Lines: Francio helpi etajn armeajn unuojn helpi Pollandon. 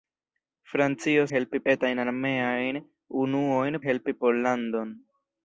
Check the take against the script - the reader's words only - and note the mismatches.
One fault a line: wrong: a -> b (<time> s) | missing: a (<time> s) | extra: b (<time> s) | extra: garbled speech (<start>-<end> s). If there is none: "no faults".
no faults